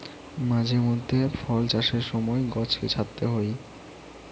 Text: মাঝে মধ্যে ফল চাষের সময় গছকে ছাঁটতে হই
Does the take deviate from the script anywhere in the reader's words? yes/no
no